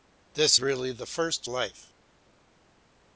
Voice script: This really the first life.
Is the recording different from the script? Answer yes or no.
no